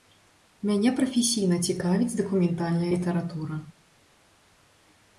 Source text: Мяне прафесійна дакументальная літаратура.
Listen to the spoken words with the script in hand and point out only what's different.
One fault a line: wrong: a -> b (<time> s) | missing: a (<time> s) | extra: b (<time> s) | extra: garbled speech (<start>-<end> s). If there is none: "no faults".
extra: цікавіць (1.7 s)